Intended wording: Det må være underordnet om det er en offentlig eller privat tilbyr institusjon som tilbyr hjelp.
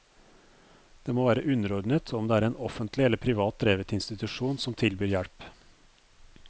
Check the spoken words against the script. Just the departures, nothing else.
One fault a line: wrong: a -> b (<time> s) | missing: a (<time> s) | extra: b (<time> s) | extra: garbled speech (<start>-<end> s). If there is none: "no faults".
wrong: tilbyr -> drevet (3.6 s)